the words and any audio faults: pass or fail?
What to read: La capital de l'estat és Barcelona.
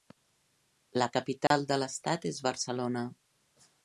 fail